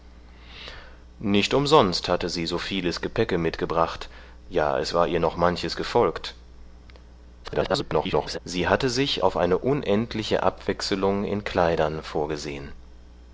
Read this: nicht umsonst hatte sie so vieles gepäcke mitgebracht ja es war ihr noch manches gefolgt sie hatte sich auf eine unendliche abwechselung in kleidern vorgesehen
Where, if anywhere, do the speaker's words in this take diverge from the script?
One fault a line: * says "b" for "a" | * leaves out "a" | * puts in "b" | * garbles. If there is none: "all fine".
* garbles